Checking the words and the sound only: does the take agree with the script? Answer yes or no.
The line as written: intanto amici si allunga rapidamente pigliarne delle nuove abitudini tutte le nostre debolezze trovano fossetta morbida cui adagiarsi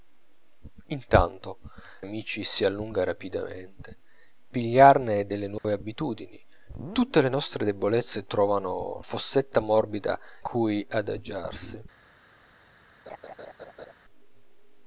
no